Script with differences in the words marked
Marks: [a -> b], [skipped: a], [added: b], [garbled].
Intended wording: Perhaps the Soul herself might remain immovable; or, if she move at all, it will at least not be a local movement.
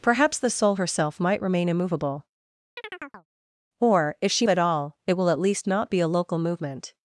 Perhaps the Soul herself might remain immovable; or, if she [skipped: move] at all, it will at least not be a local movement.